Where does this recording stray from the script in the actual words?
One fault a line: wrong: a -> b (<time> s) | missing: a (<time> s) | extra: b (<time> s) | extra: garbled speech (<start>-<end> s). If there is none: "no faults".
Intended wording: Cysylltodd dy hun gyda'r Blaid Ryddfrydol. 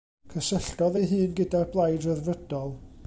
wrong: dy -> ei (1.0 s)